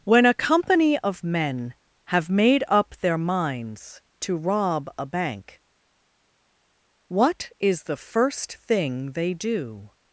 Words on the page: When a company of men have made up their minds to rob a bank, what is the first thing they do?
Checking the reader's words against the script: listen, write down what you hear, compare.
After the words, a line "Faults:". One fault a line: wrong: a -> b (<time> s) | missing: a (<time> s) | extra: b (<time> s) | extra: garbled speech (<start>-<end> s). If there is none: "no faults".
When a company of men have made up their minds to rob a bank, what is the first thing they do?
Faults:
no faults